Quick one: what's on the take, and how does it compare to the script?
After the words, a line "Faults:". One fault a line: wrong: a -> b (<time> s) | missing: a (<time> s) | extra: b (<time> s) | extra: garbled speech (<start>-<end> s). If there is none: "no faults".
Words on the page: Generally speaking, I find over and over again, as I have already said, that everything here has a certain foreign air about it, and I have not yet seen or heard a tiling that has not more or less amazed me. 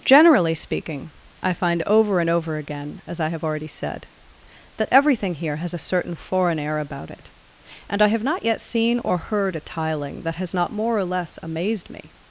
Generally speaking, I find over and over again, as I have already said, that everything here has a certain foreign air about it, and I have not yet seen or heard a tiling that has not more or less amazed me.
Faults:
no faults